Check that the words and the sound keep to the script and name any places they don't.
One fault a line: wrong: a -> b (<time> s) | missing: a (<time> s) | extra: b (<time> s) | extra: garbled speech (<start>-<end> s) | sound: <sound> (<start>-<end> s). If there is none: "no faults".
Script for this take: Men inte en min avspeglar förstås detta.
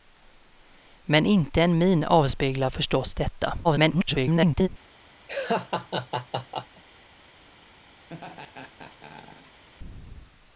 extra: garbled speech (3.6-4.7 s)
sound: laugh (5.3-6.8 s)
sound: laugh (8.1-9.6 s)